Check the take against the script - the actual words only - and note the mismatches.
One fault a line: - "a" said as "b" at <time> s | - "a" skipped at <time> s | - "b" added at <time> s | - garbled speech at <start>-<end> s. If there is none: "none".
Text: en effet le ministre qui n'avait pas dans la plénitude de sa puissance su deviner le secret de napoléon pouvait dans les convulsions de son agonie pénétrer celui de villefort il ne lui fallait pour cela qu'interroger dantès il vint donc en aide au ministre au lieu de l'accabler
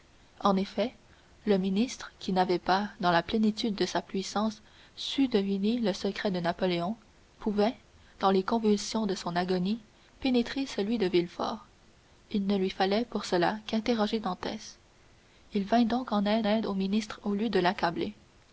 - "aide" added at 16.4 s